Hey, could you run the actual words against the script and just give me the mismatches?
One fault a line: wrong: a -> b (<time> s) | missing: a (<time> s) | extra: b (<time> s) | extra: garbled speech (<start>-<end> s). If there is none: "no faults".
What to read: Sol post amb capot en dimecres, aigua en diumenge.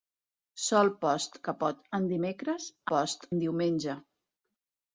missing: amb (1.4 s)
wrong: aigua -> post (2.9 s)